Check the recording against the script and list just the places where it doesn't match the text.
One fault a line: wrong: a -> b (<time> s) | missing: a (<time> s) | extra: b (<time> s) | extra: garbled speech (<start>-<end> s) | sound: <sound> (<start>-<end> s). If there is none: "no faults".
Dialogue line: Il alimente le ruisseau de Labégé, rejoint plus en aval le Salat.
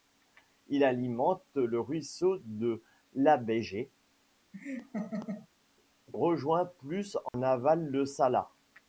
sound: laugh (4.5-5.5 s)
sound: dropout (7.3-7.3 s)